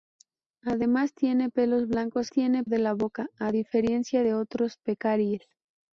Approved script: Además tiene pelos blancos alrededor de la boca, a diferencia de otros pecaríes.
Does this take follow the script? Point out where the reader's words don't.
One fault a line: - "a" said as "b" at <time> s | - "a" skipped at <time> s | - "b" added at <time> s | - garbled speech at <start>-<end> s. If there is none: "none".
- "alrededor" said as "tiene" at 2.3 s